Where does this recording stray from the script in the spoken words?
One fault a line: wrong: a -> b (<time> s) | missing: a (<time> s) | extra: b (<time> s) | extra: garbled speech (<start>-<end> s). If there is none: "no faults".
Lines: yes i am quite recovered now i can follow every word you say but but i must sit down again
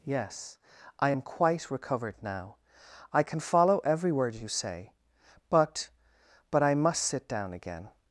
no faults